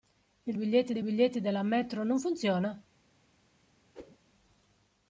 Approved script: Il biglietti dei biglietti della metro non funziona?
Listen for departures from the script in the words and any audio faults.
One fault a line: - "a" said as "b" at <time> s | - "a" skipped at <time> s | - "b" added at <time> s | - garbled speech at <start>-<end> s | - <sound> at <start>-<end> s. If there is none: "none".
- whoosh at 3.9-4.2 s